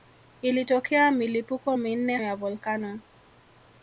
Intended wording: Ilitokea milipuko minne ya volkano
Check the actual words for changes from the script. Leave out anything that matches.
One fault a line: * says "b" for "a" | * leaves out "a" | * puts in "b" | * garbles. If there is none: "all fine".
all fine